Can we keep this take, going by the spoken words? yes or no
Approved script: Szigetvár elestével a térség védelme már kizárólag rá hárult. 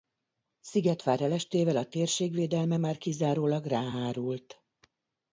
yes